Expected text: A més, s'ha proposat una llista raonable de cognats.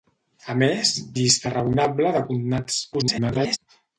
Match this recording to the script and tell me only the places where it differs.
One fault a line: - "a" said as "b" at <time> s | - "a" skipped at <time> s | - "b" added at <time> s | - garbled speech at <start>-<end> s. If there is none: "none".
- "s'ha proposat una" skipped at 0.9 s
- garbled speech at 2.9-3.6 s